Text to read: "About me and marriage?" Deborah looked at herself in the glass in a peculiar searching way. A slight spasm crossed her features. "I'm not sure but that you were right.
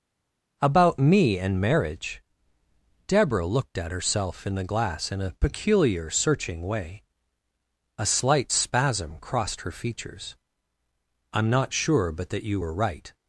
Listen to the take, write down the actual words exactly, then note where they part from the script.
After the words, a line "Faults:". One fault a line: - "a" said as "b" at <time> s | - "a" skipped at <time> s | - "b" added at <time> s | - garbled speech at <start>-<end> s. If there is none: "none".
"About me and marriage?" Deborah looked at herself in the glass in a peculiar searching way. A slight spasm crossed her features. "I'm not sure but that you were right.
Faults:
none